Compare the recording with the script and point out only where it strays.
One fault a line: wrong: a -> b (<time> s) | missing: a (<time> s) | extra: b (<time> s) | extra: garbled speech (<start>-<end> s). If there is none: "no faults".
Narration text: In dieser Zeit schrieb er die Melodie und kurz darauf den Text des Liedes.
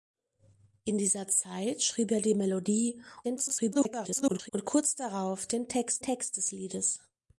extra: garbled speech (3.2-4.5 s)
extra: Text (6.0 s)